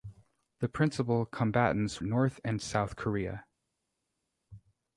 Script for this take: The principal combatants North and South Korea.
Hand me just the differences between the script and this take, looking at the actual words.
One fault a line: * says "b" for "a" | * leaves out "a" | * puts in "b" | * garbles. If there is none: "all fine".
all fine